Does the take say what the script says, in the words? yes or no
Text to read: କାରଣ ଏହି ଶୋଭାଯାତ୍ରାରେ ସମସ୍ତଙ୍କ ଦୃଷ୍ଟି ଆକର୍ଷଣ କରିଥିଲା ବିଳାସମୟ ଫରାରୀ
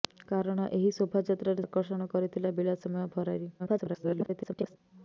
no